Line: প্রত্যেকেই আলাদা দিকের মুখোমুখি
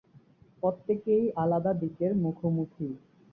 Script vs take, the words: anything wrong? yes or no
no